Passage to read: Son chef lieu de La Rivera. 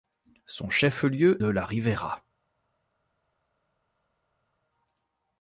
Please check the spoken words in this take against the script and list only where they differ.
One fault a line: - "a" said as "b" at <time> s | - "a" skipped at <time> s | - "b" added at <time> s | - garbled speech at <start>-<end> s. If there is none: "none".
none